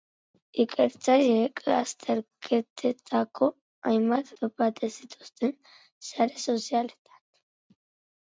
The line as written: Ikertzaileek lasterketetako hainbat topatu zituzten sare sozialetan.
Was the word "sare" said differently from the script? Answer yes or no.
no